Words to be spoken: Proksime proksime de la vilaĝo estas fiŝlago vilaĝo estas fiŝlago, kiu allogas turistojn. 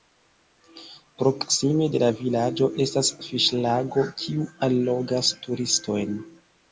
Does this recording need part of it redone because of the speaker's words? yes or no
yes